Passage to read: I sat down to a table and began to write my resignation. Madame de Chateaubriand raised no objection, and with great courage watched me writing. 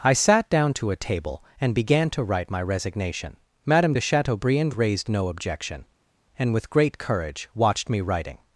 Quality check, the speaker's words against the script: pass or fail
pass